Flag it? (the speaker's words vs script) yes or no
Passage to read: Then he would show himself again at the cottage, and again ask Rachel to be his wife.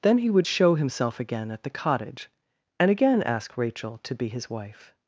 no